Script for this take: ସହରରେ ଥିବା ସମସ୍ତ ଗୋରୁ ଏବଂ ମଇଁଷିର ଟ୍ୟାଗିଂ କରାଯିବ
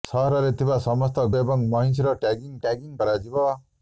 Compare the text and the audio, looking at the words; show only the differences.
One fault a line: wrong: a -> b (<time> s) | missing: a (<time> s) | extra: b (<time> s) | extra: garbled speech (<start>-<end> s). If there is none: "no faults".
missing: ଗୋରୁ (1.2 s)
extra: ଟ୍ୟାଗିଂ (2.6 s)